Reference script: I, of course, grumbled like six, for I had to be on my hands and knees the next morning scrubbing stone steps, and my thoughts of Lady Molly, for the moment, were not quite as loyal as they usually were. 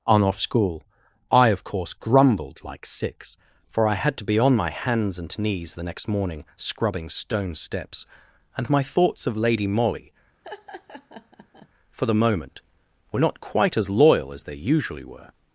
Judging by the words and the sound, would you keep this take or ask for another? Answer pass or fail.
fail